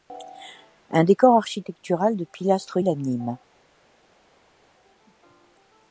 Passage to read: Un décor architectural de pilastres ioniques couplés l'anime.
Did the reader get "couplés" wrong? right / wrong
wrong